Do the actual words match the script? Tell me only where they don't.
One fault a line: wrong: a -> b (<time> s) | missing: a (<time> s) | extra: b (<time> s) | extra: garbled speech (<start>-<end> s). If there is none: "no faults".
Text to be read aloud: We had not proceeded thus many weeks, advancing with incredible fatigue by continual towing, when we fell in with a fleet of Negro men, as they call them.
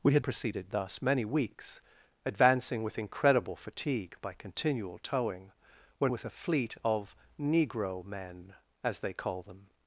missing: not (0.2 s)
missing: we fell in (6.1 s)